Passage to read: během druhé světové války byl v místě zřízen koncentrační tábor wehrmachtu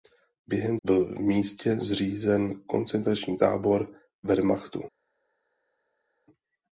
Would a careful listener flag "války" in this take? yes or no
yes